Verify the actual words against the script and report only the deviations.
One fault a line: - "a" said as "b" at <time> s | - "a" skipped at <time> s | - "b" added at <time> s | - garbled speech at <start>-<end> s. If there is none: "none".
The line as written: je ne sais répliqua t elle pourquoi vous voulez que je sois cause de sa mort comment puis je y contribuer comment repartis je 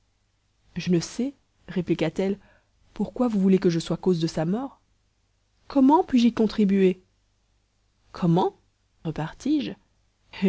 none